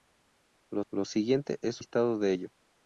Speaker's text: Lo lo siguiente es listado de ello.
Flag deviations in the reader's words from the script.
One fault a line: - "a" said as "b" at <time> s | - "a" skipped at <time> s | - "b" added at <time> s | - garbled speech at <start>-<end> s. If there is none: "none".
none